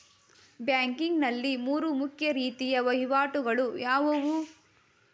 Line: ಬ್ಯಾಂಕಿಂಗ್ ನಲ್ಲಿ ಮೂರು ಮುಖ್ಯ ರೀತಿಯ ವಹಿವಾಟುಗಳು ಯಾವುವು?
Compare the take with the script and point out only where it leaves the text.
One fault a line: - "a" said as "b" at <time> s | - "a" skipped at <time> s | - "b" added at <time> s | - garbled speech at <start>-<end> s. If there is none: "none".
none